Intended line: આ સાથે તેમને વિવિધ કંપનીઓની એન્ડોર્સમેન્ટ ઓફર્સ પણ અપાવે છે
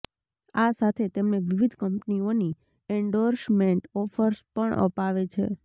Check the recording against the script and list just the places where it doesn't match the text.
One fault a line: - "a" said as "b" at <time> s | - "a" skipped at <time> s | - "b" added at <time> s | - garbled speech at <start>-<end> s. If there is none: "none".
none